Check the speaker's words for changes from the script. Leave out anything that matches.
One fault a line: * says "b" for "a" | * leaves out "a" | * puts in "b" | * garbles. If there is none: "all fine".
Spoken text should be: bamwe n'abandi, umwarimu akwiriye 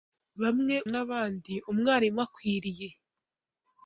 all fine